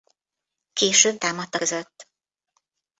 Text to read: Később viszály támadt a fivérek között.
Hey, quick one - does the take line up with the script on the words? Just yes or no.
no